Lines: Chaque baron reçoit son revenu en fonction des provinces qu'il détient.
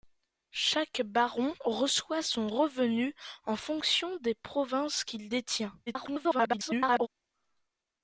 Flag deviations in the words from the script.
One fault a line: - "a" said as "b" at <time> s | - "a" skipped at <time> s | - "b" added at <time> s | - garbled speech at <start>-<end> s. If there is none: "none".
- garbled speech at 5.9-7.1 s